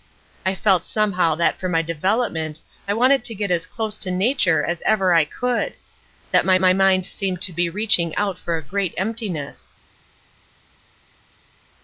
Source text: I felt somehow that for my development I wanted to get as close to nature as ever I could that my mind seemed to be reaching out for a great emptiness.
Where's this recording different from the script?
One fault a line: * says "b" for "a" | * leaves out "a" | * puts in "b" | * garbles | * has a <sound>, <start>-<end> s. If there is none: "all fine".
* puts in "my"